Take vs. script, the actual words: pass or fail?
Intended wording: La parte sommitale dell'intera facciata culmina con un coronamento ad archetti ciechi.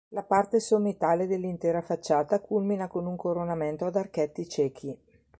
pass